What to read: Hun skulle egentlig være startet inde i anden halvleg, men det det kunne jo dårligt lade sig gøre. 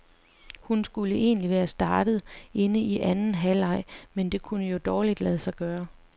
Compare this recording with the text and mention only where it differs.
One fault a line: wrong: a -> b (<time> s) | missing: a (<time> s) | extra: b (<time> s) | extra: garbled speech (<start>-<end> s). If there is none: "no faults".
missing: det (4.4 s)